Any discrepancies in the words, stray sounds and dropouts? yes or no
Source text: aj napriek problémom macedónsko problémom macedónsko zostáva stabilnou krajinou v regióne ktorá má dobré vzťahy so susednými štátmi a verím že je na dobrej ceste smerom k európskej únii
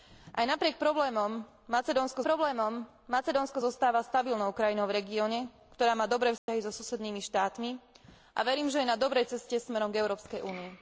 yes